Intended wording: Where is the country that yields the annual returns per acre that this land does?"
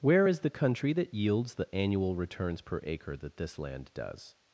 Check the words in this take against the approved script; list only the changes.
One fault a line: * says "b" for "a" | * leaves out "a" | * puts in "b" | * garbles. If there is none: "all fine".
all fine